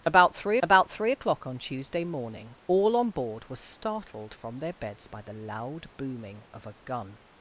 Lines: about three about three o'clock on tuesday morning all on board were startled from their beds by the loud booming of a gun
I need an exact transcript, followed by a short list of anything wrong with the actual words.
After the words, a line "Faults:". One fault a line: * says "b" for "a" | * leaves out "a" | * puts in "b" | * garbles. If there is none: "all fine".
about three about three o'clock on tuesday morning all on board were startled from their beds by the loud booming of a gun
Faults:
all fine